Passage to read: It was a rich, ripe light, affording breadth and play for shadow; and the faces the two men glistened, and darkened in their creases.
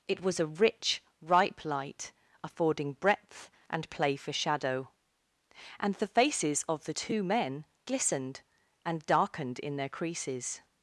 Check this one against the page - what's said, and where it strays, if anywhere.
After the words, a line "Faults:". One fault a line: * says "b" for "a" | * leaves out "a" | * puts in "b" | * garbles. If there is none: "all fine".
It was a rich, ripe light, affording breadth and play for shadow; and the faces of the two men glistened, and darkened in their creases.
Faults:
* puts in "of"